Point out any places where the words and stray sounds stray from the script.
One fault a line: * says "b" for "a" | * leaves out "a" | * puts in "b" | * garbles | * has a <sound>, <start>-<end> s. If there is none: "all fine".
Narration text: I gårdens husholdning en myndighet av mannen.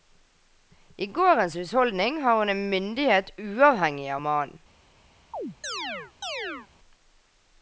* puts in "har hun"
* puts in "uavhengig"
* has a chirp, 5.3-6.7 s